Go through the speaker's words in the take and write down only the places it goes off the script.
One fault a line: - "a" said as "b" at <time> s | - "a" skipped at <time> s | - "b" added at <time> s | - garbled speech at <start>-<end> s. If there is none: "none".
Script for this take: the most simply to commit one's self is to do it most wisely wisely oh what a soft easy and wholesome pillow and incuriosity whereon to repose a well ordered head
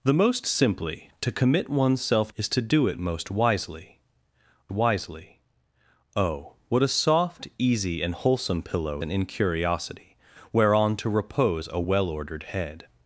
none